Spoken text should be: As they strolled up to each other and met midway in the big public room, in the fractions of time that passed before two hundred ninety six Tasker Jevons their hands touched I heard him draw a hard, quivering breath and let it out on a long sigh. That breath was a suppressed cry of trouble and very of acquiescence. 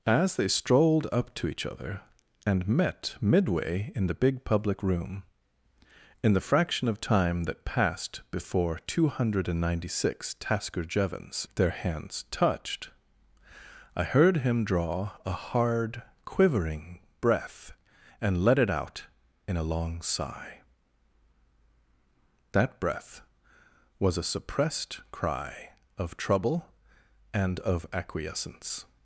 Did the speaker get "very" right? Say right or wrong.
wrong